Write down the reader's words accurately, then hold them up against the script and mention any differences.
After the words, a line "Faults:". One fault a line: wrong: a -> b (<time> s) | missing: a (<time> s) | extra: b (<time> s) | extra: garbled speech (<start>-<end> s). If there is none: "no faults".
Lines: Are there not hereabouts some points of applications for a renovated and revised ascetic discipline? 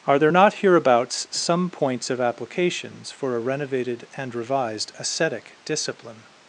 Are there not hereabouts some points of applications for a renovated and revised ascetic discipline?
Faults:
no faults